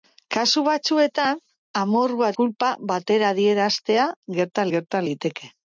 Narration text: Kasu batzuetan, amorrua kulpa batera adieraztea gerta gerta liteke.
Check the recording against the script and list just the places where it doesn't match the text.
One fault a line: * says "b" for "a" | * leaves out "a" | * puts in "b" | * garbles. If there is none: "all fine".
all fine